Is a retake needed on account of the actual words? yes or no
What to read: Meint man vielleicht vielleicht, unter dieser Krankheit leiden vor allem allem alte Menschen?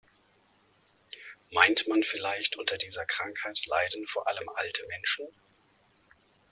yes